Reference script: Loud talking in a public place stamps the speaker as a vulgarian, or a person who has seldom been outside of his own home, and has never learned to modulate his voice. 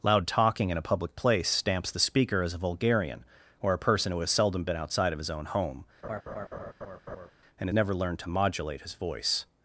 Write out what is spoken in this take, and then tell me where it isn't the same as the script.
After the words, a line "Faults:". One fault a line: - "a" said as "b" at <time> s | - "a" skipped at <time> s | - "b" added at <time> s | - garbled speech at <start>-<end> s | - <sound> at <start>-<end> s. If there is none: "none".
Loud talking in a public place stamps the speaker as a vulgarian, or a person who has seldom been outside of his own home, and never learned to modulate his voice.
Faults:
- laugh at 6.0-7.3 s
- "has" skipped at 7.7 s